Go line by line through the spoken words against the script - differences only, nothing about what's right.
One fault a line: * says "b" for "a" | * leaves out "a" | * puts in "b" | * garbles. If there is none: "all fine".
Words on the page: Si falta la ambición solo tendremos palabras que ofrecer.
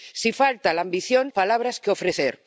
* leaves out "solo tendremos"